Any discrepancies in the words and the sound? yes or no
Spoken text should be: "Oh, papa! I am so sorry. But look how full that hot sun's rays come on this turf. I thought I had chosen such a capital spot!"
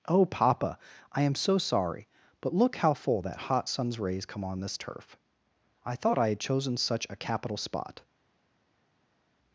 no